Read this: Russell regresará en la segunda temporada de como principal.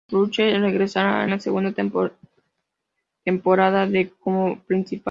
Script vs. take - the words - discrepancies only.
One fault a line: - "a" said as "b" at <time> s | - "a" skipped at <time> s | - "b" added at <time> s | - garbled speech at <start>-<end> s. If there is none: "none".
none